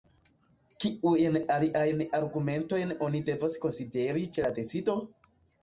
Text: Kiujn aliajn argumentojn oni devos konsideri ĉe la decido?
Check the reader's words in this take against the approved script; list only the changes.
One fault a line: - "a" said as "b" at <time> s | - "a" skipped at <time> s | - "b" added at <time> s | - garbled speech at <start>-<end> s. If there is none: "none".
none